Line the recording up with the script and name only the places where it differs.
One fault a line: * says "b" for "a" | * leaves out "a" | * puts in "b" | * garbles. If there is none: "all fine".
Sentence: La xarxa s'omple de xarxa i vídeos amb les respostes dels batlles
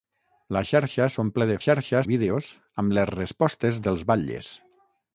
all fine